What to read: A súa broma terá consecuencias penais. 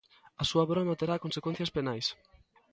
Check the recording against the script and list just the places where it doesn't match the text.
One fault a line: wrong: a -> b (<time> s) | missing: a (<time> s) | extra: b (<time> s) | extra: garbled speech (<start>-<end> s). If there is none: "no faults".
no faults